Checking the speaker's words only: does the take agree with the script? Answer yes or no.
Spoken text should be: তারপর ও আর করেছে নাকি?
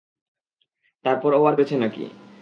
yes